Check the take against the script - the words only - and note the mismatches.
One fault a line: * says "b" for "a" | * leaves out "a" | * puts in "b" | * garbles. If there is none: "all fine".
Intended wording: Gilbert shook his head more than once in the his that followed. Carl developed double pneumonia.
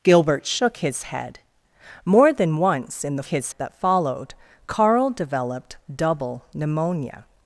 all fine